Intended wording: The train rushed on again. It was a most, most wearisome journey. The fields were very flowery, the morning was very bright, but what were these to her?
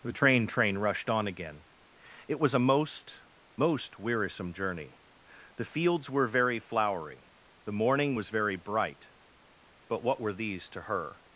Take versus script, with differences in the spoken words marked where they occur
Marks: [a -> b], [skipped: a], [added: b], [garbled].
The train [added: train] rushed on again. It was a most, most wearisome journey. The fields were very flowery, the morning was very bright, but what were these to her?